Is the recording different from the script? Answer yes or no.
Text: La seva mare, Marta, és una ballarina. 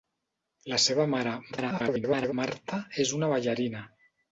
yes